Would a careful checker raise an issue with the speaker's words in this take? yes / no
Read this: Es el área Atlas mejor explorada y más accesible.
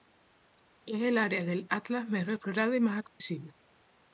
yes